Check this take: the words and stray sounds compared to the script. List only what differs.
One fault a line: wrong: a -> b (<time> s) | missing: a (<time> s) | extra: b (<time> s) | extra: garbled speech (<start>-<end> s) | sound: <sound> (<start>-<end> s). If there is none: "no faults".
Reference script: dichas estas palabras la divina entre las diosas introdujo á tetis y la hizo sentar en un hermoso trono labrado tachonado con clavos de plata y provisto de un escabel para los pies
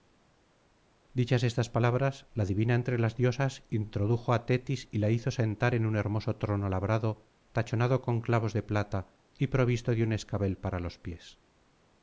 no faults